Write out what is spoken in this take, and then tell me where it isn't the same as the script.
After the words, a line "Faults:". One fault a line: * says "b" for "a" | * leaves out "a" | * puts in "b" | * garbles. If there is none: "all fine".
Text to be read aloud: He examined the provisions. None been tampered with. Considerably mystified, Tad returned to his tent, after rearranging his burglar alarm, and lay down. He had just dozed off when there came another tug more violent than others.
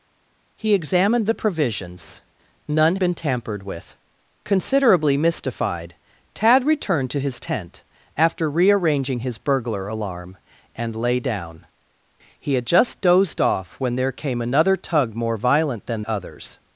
He examined the provisions. None been tampered with. Considerably mystified, Tad returned to his tent, after rearranging his burglar alarm, and lay down. He had just dozed off when there came another tug more violent than others.
Faults:
all fine